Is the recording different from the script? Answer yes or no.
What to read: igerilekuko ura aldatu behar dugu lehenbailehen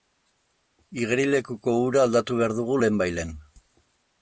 no